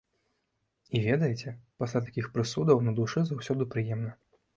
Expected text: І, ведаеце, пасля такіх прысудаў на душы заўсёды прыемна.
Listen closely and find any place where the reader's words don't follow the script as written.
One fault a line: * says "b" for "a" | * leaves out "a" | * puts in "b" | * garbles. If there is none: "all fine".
all fine